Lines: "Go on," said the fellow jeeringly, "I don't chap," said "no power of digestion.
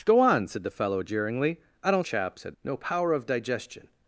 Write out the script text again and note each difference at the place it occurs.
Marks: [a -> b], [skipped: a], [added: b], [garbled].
"Go on," said the fellow jeeringly, "I don't chap," said "no power of digestion.